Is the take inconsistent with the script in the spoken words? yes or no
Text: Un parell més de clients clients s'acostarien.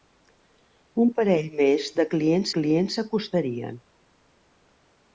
no